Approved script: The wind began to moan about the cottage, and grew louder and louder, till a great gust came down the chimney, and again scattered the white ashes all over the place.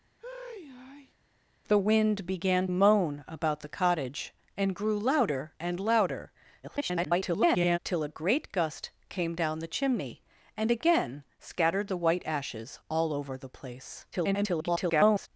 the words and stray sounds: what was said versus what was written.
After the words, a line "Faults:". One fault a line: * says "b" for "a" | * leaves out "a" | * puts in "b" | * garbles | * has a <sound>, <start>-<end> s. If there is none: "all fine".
The wind began moan about the cottage, and grew louder and louder, [garbled] till a great gust came down the chimney, and again scattered the white ashes all over the place. [garbled]
Faults:
* has a sigh, 0.2-1.1 s
* leaves out "to"
* garbles
* garbles